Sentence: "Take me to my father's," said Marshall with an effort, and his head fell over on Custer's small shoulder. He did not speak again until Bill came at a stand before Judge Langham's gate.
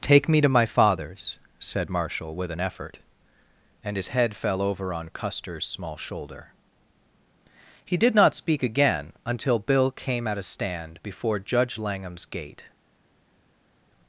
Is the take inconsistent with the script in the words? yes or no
no